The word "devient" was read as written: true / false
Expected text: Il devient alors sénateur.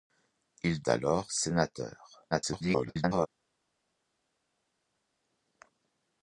false